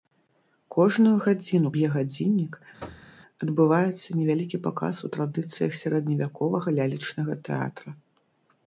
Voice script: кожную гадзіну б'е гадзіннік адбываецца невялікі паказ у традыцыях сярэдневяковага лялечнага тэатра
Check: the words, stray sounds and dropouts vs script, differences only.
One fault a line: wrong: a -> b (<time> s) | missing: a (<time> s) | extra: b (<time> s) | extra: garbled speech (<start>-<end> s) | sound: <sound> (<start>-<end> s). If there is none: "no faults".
sound: thud (2.8-3.1 s)